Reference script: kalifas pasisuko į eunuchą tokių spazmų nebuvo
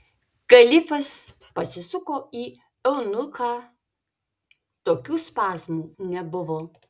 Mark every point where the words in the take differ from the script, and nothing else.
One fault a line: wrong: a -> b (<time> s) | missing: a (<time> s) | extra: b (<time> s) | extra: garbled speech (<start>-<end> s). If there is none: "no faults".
no faults